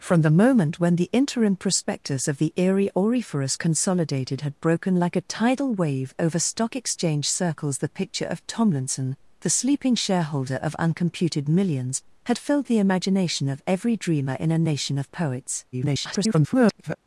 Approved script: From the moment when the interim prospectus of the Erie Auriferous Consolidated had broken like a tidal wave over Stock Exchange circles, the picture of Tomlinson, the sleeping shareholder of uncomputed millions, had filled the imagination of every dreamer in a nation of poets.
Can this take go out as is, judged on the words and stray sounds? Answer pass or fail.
fail